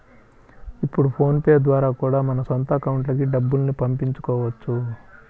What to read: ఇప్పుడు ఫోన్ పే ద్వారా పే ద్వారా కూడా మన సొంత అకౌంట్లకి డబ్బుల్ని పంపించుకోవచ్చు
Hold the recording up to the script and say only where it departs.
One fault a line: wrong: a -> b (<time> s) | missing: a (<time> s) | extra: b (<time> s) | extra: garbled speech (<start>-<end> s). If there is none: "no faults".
missing: పే ద్వారా (1.9 s)